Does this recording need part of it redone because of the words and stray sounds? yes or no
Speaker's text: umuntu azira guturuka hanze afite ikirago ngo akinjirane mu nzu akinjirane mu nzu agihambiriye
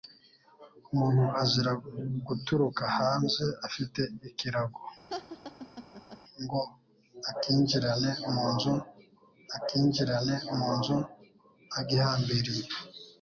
yes